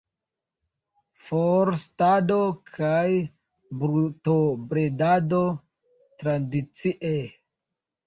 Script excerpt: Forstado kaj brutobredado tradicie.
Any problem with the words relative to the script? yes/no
no